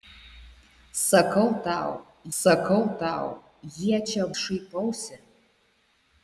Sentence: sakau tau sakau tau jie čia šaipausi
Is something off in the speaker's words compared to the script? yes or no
no